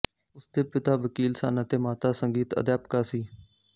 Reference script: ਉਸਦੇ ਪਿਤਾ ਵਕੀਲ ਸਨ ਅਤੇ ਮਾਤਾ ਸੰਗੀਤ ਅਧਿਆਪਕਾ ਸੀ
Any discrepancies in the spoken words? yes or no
no